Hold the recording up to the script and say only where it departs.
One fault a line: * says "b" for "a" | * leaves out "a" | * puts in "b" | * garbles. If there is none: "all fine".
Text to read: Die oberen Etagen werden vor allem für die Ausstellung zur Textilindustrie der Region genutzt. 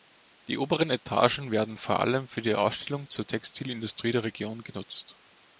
all fine